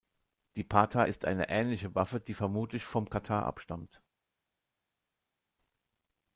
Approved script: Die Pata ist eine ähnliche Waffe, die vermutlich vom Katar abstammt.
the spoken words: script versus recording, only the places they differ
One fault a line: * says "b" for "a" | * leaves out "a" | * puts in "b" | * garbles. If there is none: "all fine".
all fine